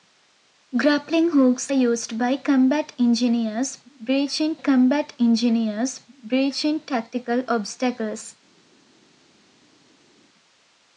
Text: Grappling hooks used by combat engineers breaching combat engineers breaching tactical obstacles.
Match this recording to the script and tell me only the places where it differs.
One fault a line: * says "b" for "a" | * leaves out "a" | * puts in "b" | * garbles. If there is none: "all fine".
all fine